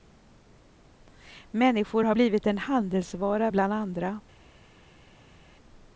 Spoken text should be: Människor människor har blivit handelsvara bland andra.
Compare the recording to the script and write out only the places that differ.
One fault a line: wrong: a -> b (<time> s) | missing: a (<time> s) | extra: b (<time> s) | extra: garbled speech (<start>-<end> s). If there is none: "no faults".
missing: människor (2.0 s)
extra: en (2.5 s)